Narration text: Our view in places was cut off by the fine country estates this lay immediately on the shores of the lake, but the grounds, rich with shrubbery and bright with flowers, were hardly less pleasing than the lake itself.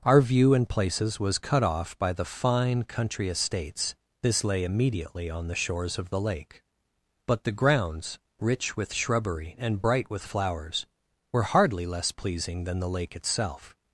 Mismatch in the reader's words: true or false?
false